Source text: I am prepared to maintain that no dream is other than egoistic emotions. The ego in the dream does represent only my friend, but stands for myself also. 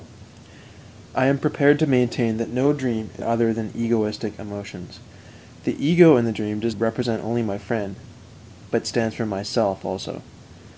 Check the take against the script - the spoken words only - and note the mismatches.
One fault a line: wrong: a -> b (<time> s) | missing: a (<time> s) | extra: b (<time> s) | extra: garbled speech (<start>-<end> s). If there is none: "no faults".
no faults